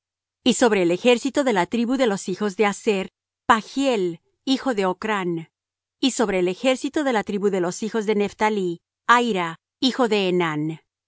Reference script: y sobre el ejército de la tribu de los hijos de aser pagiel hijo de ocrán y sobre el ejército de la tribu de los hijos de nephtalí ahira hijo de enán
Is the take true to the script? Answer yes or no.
yes